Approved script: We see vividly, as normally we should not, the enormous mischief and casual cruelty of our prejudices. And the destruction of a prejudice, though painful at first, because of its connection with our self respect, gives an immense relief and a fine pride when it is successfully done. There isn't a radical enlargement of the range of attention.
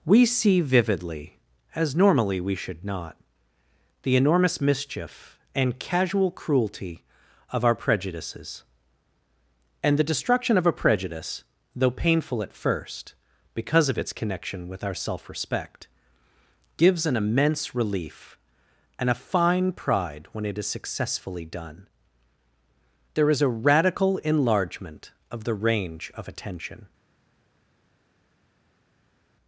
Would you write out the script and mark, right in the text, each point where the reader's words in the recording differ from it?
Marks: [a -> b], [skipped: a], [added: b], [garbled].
We see vividly, as normally we should not, the enormous mischief and casual cruelty of our prejudices. And the destruction of a prejudice, though painful at first, because of its connection with our self respect, gives an immense relief and a fine pride when it is successfully done. There [isn't -> is] a radical enlargement of the range of attention.